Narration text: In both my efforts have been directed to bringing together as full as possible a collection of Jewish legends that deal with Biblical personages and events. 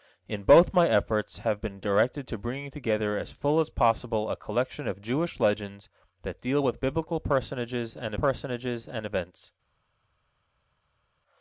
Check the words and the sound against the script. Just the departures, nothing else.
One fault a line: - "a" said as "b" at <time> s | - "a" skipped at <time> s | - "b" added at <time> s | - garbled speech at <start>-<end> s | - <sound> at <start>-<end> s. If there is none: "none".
- "personages and" added at 8.1 s